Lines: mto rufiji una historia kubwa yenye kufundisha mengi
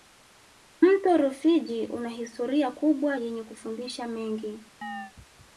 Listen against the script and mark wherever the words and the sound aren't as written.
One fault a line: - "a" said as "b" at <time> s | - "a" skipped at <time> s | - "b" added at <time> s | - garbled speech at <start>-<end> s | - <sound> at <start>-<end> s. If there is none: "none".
- chirp at 4.8-5.1 s